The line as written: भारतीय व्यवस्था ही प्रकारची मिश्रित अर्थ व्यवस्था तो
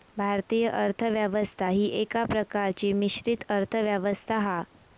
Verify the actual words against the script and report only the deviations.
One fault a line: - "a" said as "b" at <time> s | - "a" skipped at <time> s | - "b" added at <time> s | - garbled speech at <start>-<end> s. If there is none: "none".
- "अर्थ" added at 0.7 s
- "एका" added at 2.0 s
- "तो" said as "हा" at 4.4 s